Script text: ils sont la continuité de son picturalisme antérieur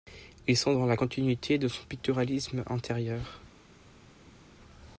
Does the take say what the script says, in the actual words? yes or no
no